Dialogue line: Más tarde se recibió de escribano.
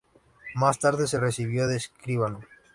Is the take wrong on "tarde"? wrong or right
right